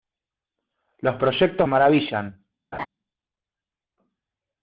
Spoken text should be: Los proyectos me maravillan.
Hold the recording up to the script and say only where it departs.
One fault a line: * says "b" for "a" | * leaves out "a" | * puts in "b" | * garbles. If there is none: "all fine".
* leaves out "me"